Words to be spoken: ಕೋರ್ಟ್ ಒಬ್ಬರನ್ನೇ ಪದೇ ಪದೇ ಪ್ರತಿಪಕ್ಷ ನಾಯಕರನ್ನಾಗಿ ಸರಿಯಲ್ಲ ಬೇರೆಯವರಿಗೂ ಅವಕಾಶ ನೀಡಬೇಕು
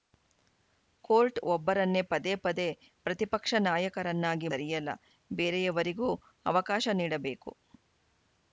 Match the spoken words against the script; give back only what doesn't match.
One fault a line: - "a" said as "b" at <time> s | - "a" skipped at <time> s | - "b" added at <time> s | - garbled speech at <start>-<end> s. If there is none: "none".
none